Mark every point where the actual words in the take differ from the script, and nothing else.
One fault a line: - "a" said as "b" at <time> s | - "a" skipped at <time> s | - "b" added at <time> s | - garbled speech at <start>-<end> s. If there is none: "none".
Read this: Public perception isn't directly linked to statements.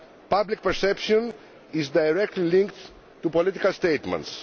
- "isn't" said as "is" at 1.7 s
- "political" added at 3.3 s